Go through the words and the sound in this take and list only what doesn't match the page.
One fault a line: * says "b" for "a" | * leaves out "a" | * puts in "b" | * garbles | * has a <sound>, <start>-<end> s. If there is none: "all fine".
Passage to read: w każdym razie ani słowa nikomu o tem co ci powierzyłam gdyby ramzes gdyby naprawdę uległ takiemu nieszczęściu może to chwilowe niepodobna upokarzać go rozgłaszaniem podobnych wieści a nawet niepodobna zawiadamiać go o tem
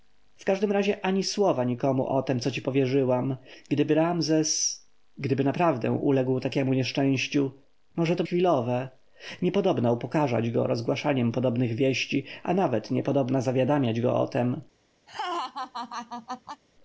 * has a laugh, 15.1-16.6 s